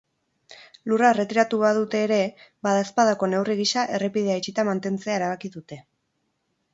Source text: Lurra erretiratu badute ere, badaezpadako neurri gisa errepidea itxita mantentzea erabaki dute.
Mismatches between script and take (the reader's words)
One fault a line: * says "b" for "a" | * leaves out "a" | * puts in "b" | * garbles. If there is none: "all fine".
all fine